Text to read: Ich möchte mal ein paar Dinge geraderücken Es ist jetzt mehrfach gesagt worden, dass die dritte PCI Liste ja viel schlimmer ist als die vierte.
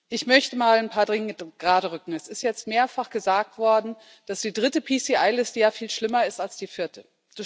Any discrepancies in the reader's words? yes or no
no